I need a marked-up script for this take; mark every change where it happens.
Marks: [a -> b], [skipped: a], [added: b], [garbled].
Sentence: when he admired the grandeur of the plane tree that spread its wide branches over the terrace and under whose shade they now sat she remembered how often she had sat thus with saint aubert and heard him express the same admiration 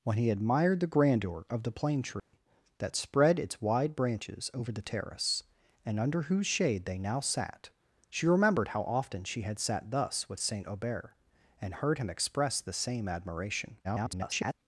when he admired the grandeur of the plane tree that spread its wide branches over the terrace and under whose shade they now sat she remembered how often she had sat thus with saint aubert and heard him express the same admiration [garbled]